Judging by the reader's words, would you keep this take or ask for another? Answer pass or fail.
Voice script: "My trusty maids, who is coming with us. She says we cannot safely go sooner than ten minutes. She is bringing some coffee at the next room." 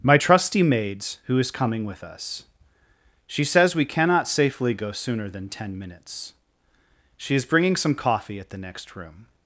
pass